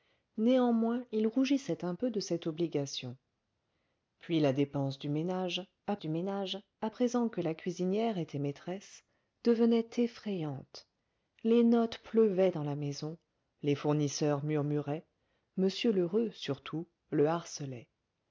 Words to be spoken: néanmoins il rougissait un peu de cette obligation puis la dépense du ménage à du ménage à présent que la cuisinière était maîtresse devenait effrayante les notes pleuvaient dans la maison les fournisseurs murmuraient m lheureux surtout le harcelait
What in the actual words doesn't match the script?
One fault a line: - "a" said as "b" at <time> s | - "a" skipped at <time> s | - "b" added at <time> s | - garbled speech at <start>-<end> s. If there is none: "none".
none